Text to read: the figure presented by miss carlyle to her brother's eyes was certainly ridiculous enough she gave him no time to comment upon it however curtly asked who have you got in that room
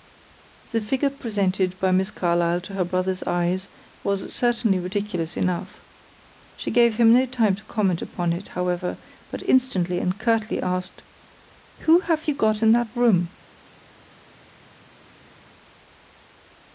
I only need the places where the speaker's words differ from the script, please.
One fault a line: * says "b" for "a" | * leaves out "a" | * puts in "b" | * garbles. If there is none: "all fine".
* puts in "but instantly and"